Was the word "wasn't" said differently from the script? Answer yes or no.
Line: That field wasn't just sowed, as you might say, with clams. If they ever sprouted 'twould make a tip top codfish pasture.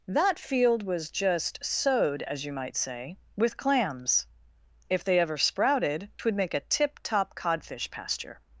yes